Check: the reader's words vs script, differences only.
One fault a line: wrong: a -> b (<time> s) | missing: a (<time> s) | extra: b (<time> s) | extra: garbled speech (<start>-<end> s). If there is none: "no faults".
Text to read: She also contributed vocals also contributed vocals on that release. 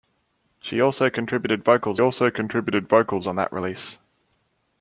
no faults